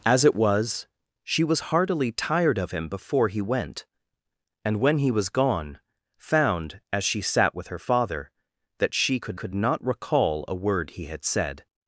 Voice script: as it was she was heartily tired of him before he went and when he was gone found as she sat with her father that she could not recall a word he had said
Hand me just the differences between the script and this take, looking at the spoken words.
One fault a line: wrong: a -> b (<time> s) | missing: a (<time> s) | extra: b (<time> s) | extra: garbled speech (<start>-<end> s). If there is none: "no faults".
extra: could (9.3 s)